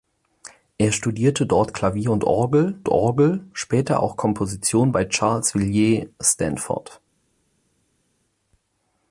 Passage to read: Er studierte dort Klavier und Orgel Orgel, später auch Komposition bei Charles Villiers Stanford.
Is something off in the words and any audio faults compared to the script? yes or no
no